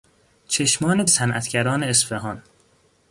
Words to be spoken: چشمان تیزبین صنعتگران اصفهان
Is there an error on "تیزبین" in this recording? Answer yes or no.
yes